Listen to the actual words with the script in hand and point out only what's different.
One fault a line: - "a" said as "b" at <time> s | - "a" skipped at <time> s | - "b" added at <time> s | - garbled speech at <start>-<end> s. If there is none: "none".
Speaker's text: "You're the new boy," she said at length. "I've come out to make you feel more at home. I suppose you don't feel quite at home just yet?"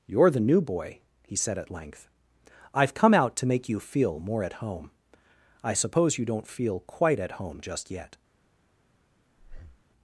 - "she" said as "he" at 1.2 s